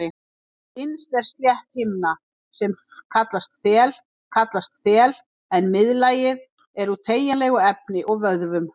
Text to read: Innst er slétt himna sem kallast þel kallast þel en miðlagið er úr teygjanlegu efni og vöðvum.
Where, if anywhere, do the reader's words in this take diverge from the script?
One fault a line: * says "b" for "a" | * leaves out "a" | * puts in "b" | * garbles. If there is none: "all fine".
all fine